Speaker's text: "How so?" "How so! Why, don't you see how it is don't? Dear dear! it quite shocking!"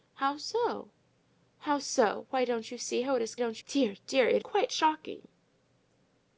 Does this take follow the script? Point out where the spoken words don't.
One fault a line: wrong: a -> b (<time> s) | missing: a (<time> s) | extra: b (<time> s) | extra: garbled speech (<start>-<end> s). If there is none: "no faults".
no faults